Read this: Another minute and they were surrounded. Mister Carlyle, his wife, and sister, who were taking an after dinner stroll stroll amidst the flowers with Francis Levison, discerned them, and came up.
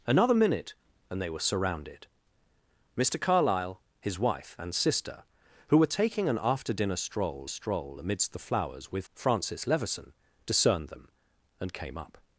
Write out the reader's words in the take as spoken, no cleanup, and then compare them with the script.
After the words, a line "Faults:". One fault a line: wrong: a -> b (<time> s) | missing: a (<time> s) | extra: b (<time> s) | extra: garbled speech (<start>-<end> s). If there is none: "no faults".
Another minute and they were surrounded. Mister Carlyle, his wife, and sister, who were taking an after dinner stroll stroll amidst the flowers with Francis Levison, discerned them, and came up.
Faults:
no faults